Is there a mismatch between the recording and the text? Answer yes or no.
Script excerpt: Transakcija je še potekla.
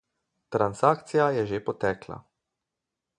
yes